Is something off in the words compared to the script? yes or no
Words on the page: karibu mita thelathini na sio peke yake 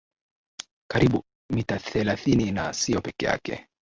no